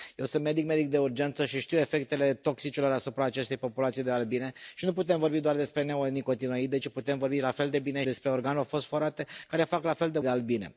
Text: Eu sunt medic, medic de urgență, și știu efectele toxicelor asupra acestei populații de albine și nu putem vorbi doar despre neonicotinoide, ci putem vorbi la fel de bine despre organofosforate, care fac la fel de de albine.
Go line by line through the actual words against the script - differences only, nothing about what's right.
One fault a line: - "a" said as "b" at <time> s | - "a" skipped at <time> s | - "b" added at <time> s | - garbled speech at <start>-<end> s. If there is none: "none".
none